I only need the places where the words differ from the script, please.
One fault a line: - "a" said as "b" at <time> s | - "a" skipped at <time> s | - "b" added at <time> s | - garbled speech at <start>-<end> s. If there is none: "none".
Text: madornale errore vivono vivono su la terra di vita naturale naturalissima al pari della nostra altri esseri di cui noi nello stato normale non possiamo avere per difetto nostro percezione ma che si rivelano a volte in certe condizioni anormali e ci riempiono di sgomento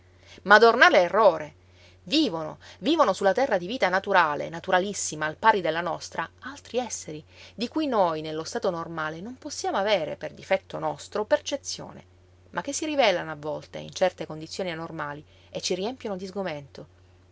none